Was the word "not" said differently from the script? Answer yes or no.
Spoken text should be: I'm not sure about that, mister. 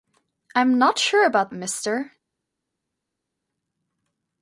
no